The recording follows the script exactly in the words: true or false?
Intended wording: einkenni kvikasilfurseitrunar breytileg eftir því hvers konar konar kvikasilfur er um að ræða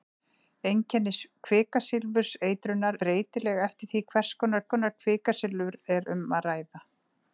true